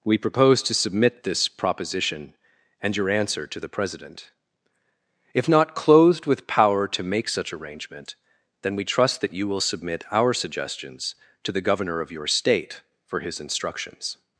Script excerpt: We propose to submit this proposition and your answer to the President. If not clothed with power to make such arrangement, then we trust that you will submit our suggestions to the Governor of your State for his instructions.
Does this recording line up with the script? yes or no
yes